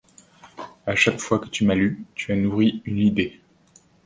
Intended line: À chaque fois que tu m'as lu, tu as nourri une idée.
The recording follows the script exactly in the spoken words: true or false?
true